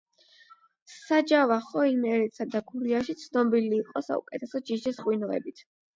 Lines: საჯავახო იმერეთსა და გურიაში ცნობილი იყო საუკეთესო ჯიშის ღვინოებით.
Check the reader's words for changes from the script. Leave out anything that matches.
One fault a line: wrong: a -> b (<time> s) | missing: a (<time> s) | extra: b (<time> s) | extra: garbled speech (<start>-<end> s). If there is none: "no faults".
no faults